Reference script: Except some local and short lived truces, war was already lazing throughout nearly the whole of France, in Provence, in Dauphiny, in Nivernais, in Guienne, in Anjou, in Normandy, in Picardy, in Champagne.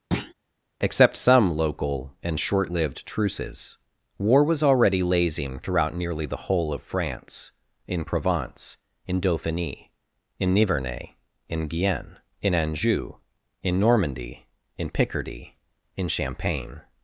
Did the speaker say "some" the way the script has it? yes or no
yes